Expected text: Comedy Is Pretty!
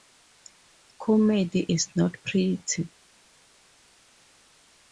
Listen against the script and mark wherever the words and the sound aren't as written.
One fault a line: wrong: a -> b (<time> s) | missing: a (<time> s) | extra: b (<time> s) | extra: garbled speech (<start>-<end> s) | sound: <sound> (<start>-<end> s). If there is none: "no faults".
extra: Not (2.0 s)